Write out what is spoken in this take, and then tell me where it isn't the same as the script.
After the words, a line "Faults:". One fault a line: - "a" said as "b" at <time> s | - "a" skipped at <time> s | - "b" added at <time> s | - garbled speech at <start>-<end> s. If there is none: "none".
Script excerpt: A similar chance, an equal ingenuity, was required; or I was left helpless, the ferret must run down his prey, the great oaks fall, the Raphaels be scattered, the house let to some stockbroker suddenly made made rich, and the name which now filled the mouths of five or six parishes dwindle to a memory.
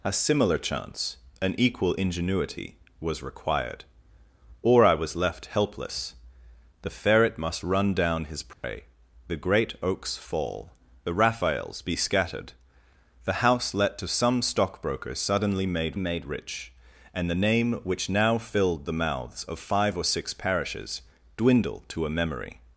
A similar chance, an equal ingenuity, was required; or I was left helpless, the ferret must run down his prey, the great oaks fall, the Raphaels be scattered, the house let to some stockbroker suddenly made made rich, and the name which now filled the mouths of five or six parishes dwindle to a memory.
Faults:
none